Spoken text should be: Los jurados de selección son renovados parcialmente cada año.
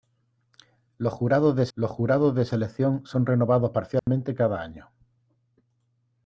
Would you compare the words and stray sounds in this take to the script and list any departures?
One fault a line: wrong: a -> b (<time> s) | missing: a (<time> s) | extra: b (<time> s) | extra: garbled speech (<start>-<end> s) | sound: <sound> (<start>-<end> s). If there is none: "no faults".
extra: los jurados de (1.7 s)
sound: dropout (4.0-4.1 s)